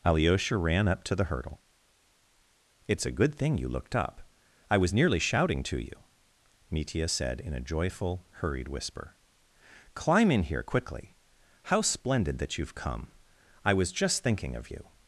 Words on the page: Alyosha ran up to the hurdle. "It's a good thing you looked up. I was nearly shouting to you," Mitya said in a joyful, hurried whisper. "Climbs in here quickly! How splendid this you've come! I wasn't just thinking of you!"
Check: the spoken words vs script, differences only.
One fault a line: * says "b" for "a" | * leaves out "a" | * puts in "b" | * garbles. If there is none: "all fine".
* says "Climb" for "Climbs"
* says "that" for "this"
* says "was" for "wasn't"